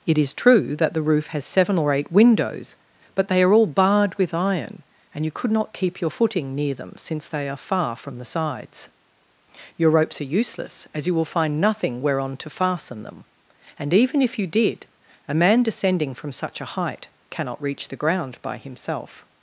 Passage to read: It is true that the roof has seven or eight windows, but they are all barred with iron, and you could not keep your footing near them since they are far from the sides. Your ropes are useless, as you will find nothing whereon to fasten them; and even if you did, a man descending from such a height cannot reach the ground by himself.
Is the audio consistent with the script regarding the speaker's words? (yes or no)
yes